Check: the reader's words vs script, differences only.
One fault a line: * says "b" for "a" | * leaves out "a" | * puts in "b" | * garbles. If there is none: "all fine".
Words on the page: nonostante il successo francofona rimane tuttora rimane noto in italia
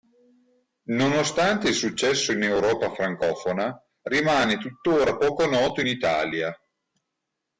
* puts in "in europa"
* says "poco" for "rimane"